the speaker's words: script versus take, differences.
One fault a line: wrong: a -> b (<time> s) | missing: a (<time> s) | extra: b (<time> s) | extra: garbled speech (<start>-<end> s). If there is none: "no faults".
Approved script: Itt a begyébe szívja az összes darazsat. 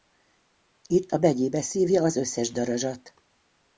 no faults